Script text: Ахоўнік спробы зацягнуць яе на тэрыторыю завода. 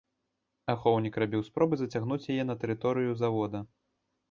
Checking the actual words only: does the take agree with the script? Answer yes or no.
no